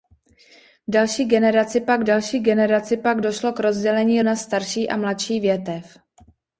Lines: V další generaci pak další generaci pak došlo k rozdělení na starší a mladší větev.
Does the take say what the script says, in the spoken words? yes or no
yes